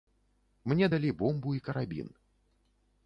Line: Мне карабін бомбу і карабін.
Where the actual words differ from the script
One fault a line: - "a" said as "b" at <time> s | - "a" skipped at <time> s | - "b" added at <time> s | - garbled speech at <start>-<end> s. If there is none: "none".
- "карабін" said as "далі" at 0.9 s